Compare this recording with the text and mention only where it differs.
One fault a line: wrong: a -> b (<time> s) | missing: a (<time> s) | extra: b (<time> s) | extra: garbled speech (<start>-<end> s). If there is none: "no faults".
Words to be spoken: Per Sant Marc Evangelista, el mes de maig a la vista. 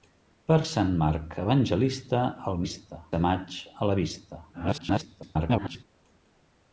wrong: mes -> vista (2.6 s)
extra: garbled speech (4.5-5.8 s)